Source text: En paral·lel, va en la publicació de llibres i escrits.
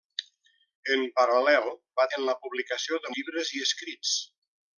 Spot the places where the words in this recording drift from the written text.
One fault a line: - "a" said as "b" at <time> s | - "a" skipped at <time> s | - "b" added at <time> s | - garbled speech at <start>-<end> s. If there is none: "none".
none